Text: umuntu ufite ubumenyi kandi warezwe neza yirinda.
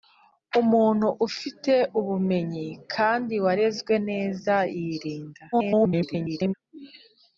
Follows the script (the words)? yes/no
no